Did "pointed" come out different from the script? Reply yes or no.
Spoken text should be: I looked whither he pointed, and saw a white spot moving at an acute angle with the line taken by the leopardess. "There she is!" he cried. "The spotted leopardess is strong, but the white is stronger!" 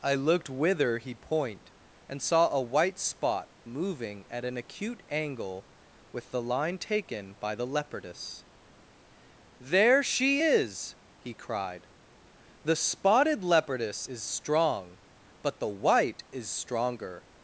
yes